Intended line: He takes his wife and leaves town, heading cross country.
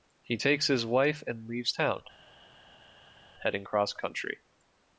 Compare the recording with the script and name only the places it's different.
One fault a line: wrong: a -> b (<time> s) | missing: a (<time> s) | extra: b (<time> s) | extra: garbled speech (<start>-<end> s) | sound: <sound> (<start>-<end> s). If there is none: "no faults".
no faults